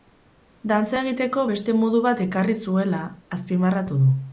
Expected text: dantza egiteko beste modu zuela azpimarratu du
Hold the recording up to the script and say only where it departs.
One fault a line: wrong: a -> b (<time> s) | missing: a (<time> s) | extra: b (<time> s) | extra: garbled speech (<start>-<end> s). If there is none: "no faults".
extra: bat ekarri (2.1 s)